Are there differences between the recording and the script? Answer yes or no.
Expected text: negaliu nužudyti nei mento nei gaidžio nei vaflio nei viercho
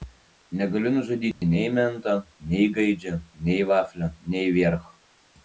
no